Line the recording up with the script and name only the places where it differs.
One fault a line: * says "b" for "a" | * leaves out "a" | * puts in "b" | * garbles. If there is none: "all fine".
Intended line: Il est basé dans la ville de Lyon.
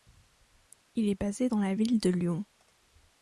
all fine